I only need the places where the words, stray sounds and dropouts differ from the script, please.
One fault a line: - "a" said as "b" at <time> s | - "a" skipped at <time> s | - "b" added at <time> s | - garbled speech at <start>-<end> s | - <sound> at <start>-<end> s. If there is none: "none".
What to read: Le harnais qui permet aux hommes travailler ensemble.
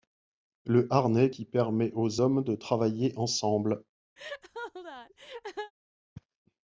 - "de" added at 2.4 s
- laugh at 4.2-5.7 s